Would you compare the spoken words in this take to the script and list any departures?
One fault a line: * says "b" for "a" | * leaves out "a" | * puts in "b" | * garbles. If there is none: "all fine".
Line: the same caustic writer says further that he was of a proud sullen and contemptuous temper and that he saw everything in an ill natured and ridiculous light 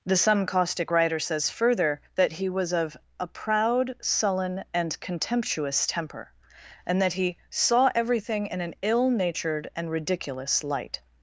* says "some" for "same"